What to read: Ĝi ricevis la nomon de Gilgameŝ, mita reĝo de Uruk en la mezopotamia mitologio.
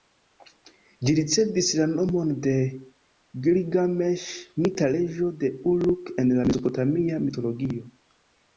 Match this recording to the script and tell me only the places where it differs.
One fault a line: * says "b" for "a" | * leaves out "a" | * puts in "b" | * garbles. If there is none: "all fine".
all fine